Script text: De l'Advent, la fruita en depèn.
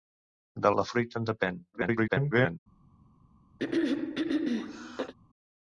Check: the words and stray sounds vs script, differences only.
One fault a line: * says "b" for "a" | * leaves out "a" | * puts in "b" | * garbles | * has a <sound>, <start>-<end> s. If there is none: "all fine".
* leaves out "l'Advent"
* garbles
* has a throat clearing, 3.6-5.1 s